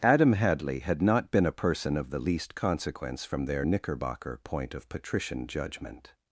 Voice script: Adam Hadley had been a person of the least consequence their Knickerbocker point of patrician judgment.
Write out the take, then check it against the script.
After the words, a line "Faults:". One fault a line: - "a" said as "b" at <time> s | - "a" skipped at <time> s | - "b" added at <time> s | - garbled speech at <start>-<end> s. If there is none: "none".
Adam Hadley had not been a person of the least consequence from their Knickerbocker point of patrician judgment.
Faults:
- "not" added at 1.0 s
- "from" added at 3.3 s